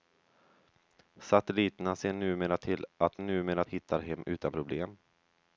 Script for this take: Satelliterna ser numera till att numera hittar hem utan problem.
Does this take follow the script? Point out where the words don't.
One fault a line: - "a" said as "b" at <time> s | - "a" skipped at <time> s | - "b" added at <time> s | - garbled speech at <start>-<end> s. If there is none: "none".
none